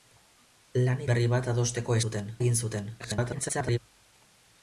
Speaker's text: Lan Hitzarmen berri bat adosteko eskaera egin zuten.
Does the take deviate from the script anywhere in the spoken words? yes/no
yes